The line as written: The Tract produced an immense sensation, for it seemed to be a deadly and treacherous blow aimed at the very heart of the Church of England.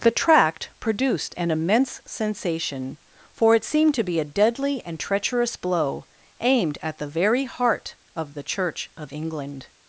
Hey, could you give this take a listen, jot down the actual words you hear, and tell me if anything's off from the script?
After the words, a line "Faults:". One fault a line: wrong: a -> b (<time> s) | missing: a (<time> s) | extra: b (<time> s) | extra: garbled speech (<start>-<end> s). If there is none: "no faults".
The Tract produced an immense sensation, for it seemed to be a deadly and treacherous blow aimed at the very heart of the Church of England.
Faults:
no faults